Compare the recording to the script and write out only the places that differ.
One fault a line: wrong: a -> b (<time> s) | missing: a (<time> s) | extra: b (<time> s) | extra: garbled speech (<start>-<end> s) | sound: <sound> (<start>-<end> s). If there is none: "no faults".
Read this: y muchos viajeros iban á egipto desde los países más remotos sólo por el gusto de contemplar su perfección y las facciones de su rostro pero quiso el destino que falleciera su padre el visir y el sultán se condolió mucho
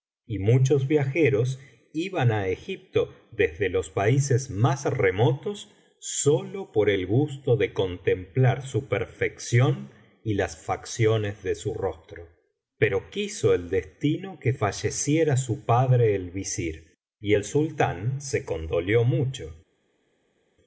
no faults